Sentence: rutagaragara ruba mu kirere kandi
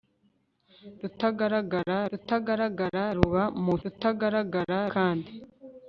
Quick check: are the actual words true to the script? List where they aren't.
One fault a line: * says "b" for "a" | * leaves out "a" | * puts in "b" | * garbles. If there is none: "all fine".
* puts in "rutagaragara"
* says "rutagaragara" for "kirere"